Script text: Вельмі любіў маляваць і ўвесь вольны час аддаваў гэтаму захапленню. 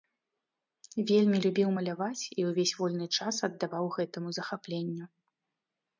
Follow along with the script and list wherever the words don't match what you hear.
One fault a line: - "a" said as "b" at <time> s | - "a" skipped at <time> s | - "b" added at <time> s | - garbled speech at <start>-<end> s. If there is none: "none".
none